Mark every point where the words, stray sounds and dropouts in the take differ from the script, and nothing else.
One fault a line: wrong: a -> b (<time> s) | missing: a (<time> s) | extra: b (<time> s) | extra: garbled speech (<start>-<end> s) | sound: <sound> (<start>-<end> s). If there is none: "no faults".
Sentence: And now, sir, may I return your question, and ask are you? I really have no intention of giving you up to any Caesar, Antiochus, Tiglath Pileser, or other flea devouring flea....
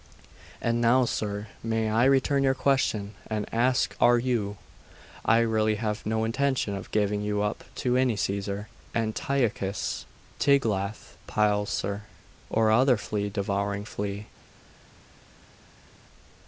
no faults